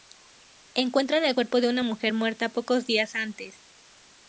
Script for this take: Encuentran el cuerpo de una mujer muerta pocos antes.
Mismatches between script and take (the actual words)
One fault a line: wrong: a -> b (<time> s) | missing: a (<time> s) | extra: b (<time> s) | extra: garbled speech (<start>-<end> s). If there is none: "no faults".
extra: días (2.9 s)